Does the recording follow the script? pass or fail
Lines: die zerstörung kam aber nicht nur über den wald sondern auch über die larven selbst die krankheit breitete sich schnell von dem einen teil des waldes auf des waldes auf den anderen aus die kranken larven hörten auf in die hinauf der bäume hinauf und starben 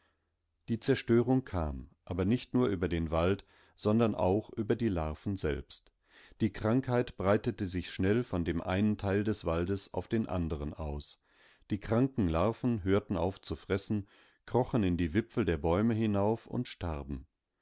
fail